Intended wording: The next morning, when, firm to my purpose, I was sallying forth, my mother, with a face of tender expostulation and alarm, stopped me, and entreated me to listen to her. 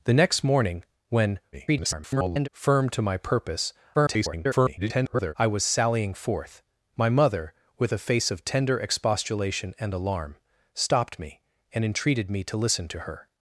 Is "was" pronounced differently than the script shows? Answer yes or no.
no